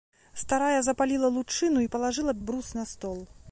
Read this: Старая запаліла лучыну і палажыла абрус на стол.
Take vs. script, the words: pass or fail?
pass